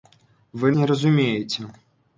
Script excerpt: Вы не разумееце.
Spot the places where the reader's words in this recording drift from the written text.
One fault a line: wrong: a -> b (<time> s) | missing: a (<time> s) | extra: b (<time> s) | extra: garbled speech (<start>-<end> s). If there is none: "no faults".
no faults